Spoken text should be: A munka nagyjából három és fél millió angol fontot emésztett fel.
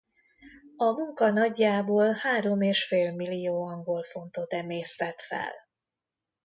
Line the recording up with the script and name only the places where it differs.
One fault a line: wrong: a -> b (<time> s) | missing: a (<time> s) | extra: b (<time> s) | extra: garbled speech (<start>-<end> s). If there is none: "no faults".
no faults